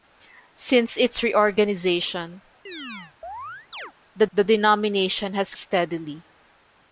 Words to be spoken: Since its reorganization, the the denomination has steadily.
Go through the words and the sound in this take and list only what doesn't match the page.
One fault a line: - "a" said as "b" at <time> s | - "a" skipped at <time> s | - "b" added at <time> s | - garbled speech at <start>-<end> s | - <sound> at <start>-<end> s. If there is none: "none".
- chirp at 2.7-3.9 s